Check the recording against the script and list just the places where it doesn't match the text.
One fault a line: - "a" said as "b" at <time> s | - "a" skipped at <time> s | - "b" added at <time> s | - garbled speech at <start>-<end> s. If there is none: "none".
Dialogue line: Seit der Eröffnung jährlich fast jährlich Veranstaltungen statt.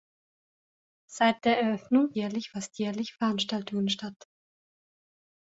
none